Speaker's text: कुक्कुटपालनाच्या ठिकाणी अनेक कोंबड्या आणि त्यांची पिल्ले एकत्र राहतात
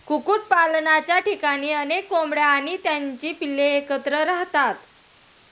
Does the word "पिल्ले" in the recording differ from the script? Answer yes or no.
no